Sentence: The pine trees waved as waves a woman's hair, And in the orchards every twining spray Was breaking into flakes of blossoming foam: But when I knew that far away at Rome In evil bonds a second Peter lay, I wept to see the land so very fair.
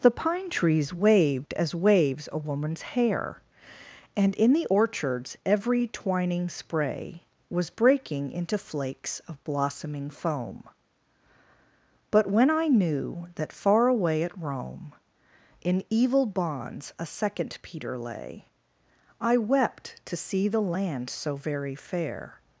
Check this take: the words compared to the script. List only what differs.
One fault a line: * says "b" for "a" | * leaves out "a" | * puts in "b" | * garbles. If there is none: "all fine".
all fine